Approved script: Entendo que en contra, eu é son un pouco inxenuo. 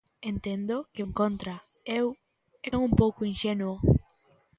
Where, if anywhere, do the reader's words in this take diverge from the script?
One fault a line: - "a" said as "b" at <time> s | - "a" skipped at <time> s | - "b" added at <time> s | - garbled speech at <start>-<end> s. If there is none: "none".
none